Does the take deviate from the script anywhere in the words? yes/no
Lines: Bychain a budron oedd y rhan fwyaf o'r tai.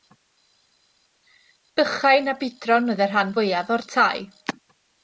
no